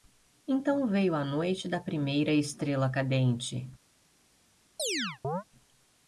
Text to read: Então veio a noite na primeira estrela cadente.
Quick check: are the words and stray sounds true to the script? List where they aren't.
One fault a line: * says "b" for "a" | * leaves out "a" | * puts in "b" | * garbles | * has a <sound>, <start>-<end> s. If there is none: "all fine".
* says "da" for "na"
* has a chirp, 4.8-5.4 s